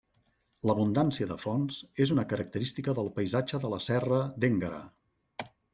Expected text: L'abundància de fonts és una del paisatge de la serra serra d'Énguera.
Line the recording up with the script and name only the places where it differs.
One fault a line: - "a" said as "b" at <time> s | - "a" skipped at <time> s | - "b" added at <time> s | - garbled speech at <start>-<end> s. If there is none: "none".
- "característica" added at 2.3 s
- "serra" skipped at 4.2 s